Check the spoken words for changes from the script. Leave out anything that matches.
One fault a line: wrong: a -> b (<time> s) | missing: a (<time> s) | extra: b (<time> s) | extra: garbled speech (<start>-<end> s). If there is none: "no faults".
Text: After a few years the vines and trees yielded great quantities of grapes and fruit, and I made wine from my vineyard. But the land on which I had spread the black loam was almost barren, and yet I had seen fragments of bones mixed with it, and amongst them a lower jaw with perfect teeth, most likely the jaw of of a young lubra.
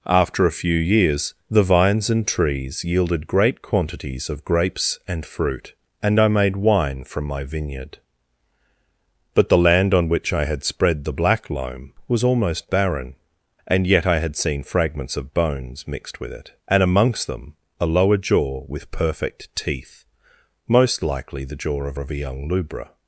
no faults